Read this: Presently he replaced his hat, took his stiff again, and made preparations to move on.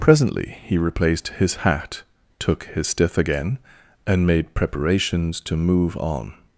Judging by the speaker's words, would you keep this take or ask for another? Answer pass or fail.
pass